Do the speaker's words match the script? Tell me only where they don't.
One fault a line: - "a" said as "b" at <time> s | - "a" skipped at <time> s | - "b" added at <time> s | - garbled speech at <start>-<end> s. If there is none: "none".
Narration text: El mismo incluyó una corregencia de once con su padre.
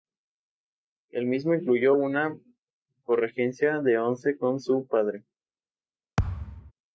none